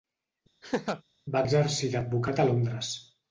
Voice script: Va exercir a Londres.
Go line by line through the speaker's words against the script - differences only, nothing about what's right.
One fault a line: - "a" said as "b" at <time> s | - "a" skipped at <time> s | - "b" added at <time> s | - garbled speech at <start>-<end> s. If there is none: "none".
- "d'advocat" added at 2.0 s